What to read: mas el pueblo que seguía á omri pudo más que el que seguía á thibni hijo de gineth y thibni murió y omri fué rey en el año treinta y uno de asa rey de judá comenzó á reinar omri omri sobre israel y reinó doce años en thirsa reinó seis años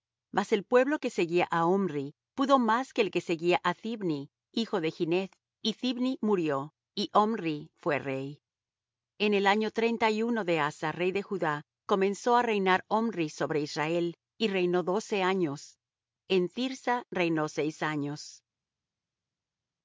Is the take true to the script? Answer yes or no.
no